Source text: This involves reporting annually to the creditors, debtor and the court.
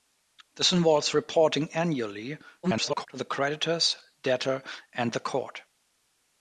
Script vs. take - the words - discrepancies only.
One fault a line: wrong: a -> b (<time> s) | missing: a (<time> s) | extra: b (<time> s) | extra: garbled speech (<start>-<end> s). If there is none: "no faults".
extra: garbled speech (2.6-3.1 s)